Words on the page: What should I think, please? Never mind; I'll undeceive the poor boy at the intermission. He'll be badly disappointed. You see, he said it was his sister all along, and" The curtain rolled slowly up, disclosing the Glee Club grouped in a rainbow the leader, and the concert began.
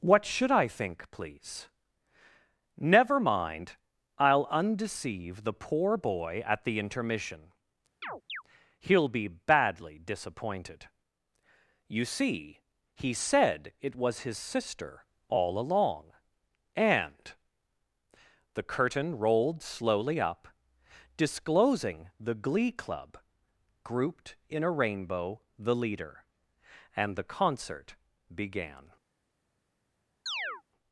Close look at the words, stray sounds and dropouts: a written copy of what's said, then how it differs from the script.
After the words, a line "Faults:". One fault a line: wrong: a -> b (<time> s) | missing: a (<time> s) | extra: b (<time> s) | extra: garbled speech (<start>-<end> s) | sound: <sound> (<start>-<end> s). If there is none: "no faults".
What should I think, please? Never mind; I'll undeceive the poor boy at the intermission. He'll be badly disappointed. You see, he said it was his sister all along, and" The curtain rolled slowly up, disclosing the Glee Club grouped in a rainbow the leader, and the concert began.
Faults:
sound: chirp (8.0-8.4 s)
sound: chirp (30.3-30.6 s)